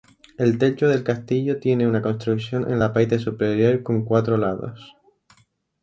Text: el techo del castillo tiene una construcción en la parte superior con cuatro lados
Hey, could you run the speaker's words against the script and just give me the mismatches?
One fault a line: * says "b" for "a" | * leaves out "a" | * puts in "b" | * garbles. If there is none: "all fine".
all fine